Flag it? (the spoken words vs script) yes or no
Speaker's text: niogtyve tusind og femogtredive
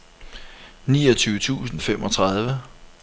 no